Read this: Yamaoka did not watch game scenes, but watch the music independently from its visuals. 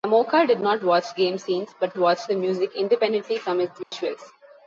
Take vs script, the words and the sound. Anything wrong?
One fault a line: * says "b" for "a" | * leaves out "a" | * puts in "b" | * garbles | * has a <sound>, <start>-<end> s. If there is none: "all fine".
* has a dropout, 3.8-3.9 s